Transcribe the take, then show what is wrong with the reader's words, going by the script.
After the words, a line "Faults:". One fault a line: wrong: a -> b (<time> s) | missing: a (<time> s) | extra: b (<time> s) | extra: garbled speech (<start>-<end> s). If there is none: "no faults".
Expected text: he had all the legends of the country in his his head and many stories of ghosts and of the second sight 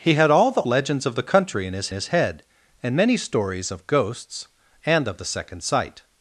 he had all the legends of the country in his his head and many stories of ghosts and of the second sight
Faults:
no faults